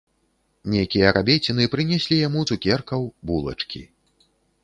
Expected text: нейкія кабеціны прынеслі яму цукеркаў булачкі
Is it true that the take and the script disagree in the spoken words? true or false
false